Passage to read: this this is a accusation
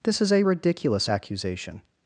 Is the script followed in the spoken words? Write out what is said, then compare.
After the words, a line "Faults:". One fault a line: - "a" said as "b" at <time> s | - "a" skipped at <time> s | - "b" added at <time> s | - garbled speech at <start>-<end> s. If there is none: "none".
this is a ridiculous accusation
Faults:
- "this" skipped at 0.2 s
- "ridiculous" added at 0.4 s